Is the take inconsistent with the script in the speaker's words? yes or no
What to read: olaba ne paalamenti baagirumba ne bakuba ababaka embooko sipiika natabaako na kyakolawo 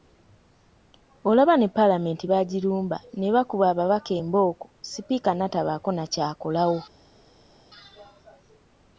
no